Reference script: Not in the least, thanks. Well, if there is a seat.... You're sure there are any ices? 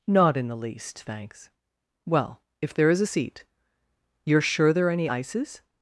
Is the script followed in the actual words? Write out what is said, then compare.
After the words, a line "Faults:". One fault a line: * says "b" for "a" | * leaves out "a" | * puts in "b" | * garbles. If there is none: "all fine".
Not in the least, thanks. Well, if there is a seat.... You're sure there are any ices?
Faults:
all fine